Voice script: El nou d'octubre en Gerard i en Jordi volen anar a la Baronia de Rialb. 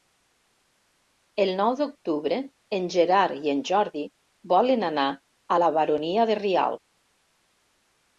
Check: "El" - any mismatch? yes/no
no